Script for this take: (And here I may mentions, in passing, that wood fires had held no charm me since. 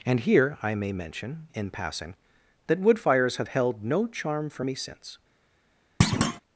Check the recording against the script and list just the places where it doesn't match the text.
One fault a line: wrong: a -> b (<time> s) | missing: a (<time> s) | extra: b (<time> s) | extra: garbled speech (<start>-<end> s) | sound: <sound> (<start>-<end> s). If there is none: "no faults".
wrong: mentions -> mention (0.9 s)
wrong: had -> have (3.4 s)
extra: for (4.5 s)
sound: thud (6.0-6.4 s)